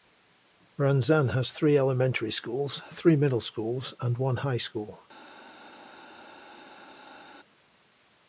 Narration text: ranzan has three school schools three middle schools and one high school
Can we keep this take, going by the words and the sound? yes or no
no